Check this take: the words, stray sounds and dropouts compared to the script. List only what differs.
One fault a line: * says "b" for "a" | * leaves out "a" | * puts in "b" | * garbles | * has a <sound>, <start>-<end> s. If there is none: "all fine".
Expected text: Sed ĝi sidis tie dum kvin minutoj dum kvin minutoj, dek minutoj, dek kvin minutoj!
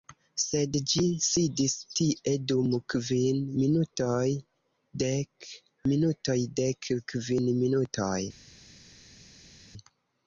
* leaves out "dum kvin minutoj"